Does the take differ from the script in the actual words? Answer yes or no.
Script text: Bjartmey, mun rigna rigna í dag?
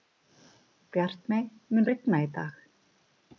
yes